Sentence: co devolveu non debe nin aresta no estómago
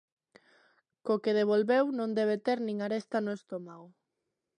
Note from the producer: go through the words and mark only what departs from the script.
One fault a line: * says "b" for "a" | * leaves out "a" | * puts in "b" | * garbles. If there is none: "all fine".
* puts in "que"
* puts in "ter"